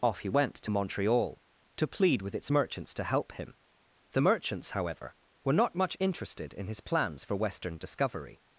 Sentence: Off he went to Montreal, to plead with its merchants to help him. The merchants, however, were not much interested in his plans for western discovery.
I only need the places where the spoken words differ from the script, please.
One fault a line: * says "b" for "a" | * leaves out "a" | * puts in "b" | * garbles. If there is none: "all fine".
all fine